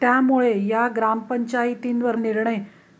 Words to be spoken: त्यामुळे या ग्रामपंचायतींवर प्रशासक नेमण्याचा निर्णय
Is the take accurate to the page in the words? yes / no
no